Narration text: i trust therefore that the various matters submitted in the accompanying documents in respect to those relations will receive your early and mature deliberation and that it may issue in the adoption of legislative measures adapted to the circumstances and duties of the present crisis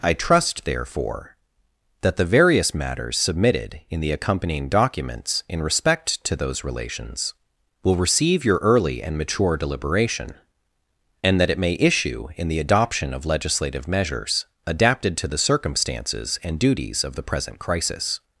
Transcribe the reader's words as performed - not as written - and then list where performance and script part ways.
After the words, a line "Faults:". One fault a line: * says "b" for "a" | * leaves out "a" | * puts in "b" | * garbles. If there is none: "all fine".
i trust therefore that the various matters submitted in the accompanying documents in respect to those relations will receive your early and mature deliberation and that it may issue in the adoption of legislative measures adapted to the circumstances and duties of the present crisis
Faults:
all fine